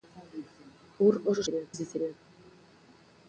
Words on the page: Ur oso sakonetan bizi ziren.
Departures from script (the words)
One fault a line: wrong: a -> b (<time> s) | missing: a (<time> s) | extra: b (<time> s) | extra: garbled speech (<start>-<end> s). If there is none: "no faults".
wrong: sakonetan -> ziren (1.4 s)